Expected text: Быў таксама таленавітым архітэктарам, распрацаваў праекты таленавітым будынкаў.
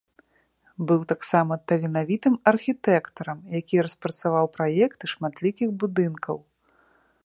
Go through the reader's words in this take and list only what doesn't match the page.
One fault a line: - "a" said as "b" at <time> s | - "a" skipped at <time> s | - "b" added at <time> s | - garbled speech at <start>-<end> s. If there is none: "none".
- "які" added at 3.6 s
- "таленавітым" said as "шматлікіх" at 5.2 s